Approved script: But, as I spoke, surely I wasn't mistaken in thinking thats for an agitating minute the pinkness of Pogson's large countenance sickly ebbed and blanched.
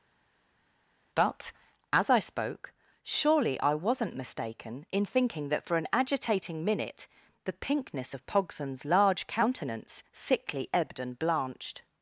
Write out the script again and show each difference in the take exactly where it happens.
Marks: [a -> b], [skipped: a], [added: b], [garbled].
But, as I spoke, surely I wasn't mistaken in thinking [thats -> that] for an agitating minute the pinkness of Pogson's large countenance sickly ebbed and blanched.